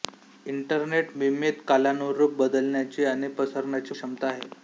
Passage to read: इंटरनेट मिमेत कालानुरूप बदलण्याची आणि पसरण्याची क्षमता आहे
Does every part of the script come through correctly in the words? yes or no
yes